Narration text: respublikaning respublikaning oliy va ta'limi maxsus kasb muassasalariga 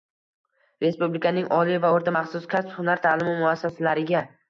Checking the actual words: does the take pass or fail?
fail